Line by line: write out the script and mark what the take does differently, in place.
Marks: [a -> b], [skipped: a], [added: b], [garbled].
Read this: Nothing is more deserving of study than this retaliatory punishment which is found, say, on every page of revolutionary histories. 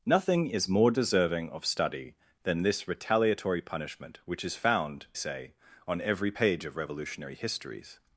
Nothing is more deserving of study than this retaliatory punishment which is found, say, on every page of revolutionary histories.